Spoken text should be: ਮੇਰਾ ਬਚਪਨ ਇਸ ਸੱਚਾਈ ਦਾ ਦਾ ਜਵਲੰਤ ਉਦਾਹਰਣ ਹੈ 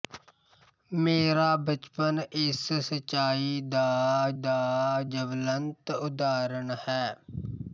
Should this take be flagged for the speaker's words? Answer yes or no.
no